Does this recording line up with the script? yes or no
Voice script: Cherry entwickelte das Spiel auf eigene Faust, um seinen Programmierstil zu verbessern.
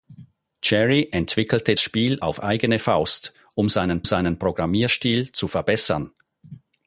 no